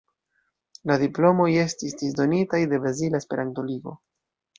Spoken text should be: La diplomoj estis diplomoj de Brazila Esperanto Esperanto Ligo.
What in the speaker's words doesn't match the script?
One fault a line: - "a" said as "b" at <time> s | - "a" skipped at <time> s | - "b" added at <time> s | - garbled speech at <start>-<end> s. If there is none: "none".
- "diplomoj" said as "disdonitaj" at 2.0 s
- "Esperanto" skipped at 3.7 s